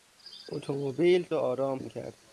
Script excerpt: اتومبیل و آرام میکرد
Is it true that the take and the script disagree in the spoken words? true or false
false